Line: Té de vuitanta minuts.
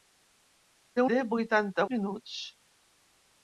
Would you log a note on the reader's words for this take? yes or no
no